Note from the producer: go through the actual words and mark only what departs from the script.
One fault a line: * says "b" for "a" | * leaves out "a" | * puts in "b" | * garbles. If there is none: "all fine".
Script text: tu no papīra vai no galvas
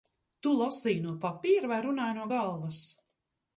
* puts in "lasīji"
* puts in "runāji"